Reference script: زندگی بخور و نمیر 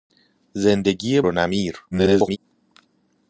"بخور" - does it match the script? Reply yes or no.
no